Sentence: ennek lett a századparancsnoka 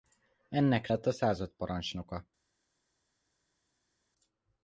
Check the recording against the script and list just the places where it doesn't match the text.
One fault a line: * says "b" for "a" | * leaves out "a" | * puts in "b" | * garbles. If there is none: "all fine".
all fine